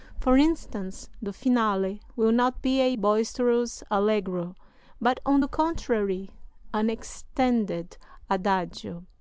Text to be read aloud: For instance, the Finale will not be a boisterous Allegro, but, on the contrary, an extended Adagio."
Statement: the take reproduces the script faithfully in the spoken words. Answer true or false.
true